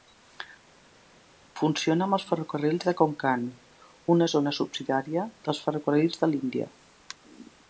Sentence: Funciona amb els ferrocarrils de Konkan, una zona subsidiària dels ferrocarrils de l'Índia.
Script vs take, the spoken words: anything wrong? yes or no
no